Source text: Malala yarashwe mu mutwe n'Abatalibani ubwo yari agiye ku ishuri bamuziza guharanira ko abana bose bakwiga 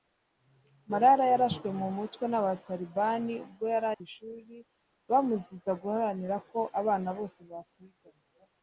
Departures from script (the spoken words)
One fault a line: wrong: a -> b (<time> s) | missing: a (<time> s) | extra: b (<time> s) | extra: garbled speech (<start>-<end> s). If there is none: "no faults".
missing: agiye (3.9 s)